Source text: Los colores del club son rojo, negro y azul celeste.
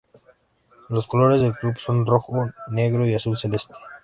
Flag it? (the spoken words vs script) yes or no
no